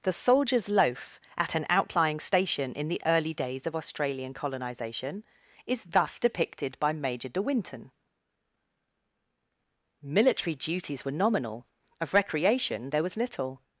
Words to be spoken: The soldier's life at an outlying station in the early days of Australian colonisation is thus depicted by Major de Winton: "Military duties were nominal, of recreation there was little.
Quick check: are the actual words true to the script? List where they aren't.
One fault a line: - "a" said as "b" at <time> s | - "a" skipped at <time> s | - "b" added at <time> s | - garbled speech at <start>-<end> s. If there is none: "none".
- "life" said as "loaf" at 0.7 s